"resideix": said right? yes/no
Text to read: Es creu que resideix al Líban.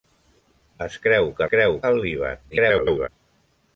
no